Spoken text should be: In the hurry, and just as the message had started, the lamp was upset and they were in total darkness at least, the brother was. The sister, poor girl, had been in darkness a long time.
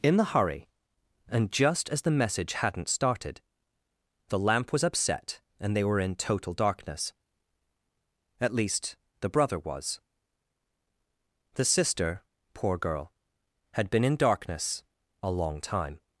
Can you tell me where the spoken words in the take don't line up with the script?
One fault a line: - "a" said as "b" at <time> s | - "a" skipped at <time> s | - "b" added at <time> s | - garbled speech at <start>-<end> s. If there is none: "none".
- "had" said as "hadn't" at 2.5 s